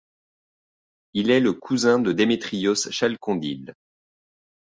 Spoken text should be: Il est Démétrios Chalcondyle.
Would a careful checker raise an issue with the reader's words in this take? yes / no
yes